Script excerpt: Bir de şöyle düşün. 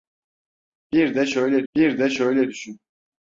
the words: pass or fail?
fail